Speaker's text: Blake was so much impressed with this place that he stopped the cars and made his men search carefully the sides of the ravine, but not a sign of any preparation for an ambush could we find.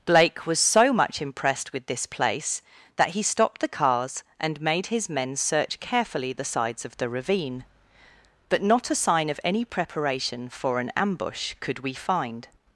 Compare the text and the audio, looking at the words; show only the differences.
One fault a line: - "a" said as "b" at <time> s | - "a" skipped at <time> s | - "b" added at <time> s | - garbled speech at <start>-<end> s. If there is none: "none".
none